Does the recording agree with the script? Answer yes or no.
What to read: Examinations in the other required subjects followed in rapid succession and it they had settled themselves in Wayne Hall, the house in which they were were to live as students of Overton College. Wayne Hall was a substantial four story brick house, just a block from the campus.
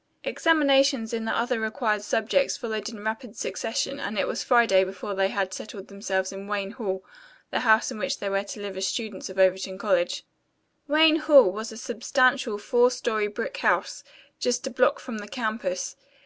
no